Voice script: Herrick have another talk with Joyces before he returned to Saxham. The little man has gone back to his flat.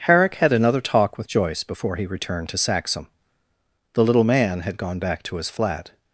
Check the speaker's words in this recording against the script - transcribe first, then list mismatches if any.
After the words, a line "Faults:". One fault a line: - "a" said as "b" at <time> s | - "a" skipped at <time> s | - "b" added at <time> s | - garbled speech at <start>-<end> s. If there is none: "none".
Herrick had another talk with Joyce before he returned to Saxham. The little man had gone back to his flat.
Faults:
- "have" said as "had" at 0.3 s
- "Joyces" said as "Joyce" at 1.3 s
- "has" said as "had" at 4.6 s